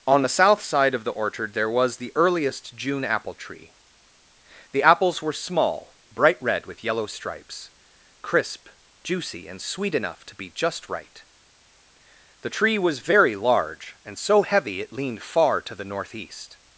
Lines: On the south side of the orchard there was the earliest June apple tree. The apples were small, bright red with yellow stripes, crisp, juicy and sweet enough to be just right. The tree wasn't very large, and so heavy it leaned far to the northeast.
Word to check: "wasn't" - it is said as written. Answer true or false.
false